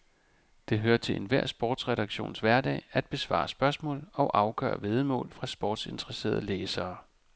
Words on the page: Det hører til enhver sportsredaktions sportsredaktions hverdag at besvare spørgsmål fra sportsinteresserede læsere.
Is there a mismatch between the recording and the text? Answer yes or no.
yes